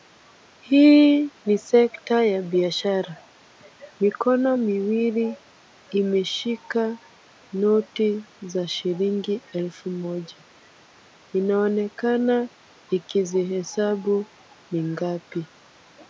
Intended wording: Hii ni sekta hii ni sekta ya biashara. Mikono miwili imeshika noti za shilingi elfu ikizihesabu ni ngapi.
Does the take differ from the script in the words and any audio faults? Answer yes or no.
yes